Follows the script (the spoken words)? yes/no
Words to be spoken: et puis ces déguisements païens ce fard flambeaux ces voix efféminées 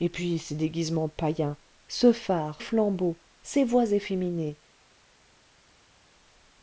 yes